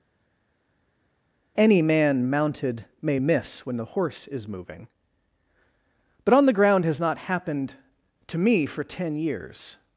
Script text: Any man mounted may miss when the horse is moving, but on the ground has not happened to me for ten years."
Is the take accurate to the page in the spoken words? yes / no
yes